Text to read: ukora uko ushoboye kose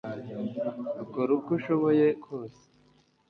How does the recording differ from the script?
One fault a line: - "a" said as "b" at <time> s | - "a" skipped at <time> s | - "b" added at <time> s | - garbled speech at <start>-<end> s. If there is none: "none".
none